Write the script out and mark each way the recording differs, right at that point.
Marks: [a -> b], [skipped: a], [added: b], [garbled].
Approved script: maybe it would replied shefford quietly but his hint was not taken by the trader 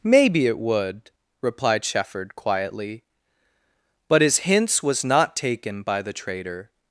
maybe it would replied shefford quietly but his [hint -> hints] was not taken by the trader